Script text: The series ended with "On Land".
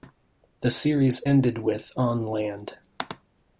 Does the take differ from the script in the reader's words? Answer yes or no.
no